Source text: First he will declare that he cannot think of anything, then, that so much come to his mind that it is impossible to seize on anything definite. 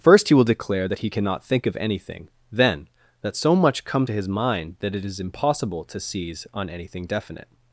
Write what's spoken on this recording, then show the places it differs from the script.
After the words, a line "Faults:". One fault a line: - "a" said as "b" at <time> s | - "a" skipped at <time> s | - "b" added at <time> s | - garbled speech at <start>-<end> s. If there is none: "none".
First he will declare that he cannot think of anything, then, that so much come to his mind that it is impossible to seize on anything definite.
Faults:
none